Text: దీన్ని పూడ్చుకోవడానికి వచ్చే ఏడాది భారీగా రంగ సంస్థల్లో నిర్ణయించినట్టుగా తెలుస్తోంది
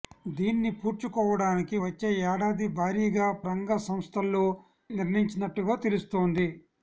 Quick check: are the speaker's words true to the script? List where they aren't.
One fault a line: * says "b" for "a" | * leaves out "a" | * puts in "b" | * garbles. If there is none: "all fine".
all fine